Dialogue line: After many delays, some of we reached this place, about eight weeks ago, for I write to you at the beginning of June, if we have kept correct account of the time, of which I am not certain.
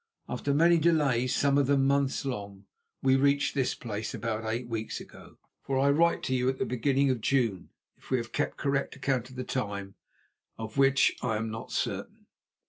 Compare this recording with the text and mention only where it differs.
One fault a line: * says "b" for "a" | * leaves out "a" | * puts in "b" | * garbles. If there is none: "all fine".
* puts in "them months long"